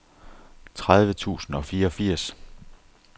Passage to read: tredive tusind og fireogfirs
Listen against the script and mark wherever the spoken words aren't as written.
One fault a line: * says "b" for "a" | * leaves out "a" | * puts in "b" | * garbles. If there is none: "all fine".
all fine